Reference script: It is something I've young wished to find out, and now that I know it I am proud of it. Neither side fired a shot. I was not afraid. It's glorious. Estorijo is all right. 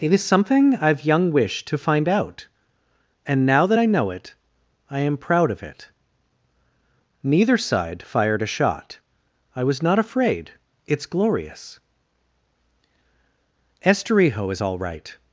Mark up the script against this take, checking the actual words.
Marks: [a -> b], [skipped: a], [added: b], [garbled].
It is something I've young wished to find out, and now that I know it I am proud of it. Neither side fired a shot. I was not afraid. It's glorious. Estorijo is all right.